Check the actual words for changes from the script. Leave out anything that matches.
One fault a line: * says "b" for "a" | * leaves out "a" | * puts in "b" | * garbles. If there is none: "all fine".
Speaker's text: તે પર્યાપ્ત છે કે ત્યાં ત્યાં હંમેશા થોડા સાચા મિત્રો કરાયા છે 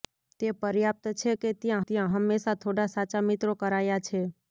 all fine